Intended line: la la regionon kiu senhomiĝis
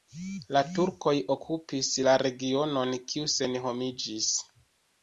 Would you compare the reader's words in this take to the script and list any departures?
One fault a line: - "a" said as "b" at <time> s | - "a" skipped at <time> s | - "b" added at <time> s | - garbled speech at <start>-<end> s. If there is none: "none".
- "turkoj okupis" added at 0.8 s